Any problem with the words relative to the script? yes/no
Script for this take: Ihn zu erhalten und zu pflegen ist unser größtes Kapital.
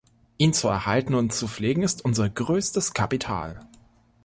no